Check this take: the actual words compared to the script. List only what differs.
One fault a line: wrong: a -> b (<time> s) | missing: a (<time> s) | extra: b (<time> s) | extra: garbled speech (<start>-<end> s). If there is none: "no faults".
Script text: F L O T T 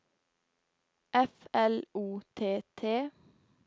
no faults